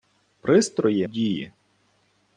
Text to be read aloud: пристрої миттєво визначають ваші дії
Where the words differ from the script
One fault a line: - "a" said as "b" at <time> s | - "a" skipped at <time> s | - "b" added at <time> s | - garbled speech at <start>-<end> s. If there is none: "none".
- "миттєво визначають ваші" skipped at 1.1 s